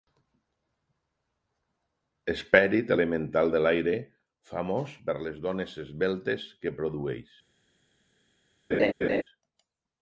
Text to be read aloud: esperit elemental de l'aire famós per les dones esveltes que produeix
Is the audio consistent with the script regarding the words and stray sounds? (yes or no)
no